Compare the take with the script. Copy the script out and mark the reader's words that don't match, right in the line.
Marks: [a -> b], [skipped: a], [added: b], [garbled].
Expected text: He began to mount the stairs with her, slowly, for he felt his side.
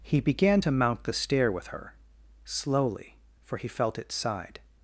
He began to mount the [stairs -> stair] with her, slowly, for he felt [his -> its] side.